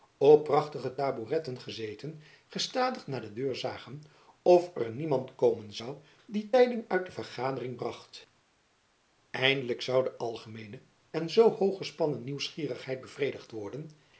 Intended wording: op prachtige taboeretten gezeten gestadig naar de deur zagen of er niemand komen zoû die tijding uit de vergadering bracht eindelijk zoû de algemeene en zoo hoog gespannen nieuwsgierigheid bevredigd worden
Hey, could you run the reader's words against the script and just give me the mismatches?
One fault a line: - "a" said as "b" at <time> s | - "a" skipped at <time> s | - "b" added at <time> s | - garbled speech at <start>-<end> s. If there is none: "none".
none